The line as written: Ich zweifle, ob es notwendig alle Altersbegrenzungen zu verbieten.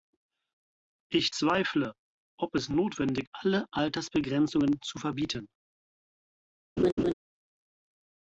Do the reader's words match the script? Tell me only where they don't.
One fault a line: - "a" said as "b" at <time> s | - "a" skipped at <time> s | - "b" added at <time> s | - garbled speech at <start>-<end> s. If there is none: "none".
none